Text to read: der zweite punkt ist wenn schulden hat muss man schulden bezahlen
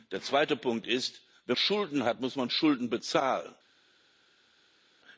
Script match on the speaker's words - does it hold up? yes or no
yes